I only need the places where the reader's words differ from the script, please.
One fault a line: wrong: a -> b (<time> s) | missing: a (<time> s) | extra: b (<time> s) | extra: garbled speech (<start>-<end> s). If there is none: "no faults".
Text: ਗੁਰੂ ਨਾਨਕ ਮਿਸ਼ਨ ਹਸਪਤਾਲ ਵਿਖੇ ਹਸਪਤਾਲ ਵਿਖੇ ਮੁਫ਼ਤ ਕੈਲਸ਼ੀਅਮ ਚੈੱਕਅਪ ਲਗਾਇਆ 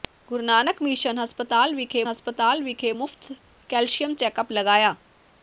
no faults